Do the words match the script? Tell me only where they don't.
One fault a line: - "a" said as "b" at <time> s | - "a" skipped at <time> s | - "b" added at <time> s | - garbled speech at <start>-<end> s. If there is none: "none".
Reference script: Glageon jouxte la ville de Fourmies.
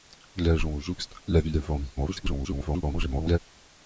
- garbled speech at 2.0-3.4 s